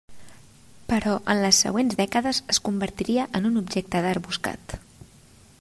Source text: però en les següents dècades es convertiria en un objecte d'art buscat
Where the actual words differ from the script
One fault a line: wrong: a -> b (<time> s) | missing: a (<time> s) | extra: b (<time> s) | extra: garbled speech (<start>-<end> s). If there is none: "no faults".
no faults